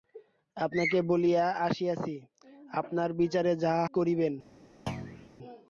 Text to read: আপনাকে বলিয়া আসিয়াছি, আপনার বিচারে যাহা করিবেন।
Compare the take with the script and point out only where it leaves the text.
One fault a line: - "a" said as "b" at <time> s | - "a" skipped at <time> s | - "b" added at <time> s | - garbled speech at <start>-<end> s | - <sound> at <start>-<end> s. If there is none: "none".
- thud at 4.9-5.3 s